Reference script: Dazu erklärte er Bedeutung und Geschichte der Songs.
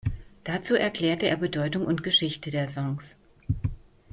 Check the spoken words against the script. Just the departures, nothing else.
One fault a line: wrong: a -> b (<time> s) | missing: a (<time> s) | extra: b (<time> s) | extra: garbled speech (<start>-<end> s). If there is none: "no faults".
no faults